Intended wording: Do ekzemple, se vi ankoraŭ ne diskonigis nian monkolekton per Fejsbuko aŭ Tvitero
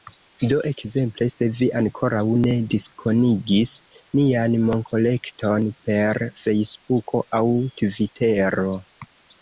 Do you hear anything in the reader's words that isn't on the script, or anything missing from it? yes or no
no